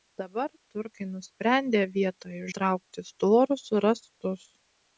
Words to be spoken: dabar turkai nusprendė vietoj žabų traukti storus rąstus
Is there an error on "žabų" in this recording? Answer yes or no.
yes